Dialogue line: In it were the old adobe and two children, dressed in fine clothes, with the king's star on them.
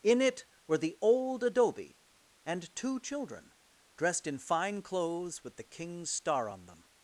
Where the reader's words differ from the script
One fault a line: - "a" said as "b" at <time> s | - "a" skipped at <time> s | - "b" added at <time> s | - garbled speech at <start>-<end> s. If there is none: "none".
none